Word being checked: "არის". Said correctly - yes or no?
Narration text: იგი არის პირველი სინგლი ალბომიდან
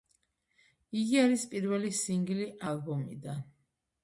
yes